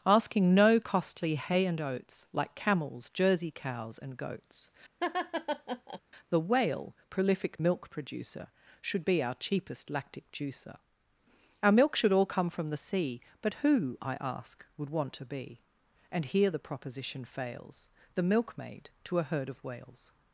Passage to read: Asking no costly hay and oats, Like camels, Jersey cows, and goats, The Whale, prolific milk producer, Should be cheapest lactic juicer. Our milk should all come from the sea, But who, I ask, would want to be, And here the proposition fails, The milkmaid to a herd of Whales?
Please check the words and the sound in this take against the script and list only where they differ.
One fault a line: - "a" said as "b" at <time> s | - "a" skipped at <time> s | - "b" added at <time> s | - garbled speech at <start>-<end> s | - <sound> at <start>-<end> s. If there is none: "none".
- laugh at 5.0-6.0 s
- "our" added at 9.2 s